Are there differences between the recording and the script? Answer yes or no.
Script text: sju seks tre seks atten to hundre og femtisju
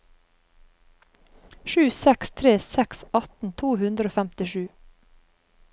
no